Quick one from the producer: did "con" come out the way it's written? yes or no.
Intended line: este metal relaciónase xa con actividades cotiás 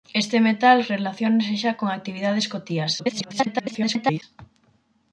yes